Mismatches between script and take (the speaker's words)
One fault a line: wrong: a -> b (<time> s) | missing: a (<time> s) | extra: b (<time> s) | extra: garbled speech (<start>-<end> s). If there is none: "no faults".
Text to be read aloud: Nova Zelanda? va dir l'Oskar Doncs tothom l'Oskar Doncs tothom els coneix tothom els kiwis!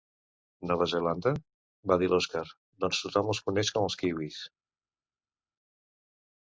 missing: l'Oskar Doncs tothom (3.3 s)
wrong: tothom -> com (3.8 s)